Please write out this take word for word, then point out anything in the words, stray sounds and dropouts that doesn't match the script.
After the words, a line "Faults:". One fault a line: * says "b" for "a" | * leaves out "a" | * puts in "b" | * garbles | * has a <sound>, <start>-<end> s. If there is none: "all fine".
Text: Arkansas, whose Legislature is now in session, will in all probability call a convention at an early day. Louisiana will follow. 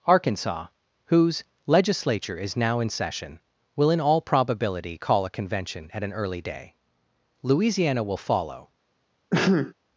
Arkansas, whose Legislature is now in session, will in all probability call a convention at an early day. Louisiana will follow.
Faults:
* has a sneeze, 9.3-9.7 s